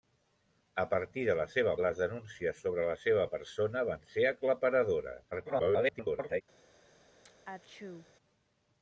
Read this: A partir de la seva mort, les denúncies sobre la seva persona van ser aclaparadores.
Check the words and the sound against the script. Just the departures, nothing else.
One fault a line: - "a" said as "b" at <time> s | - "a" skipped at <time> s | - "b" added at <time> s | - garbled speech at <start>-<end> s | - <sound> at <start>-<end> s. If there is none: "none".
- "mort" skipped at 1.8 s
- garbled speech at 5.3-6.4 s
- sneeze at 7.2-8.1 s